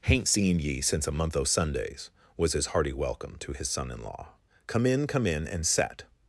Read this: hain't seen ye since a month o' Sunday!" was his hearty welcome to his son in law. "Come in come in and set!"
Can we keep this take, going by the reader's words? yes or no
no